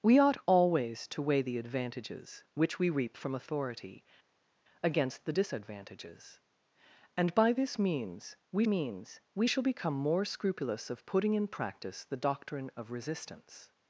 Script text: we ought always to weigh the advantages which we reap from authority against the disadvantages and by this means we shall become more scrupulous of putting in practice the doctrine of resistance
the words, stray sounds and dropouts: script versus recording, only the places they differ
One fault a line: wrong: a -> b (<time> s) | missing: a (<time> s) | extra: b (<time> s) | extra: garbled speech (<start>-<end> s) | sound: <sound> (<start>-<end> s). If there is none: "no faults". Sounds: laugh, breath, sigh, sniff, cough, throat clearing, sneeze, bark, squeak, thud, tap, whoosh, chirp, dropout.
extra: means we (8.7 s)